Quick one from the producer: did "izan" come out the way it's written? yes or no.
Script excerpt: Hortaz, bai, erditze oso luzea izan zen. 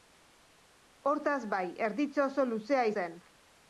no